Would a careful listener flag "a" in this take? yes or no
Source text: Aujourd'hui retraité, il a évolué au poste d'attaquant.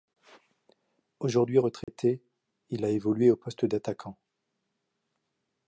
no